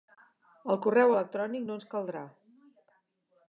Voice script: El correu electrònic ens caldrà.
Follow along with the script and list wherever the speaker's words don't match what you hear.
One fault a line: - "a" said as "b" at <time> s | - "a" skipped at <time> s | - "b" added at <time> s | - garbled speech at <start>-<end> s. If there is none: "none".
- "no" added at 1.7 s